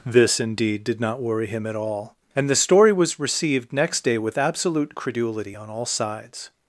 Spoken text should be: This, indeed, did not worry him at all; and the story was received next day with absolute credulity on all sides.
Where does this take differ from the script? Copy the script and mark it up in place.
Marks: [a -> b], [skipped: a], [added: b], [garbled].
This, indeed, did not worry him at all; and the story was received next day with absolute credulity on all sides.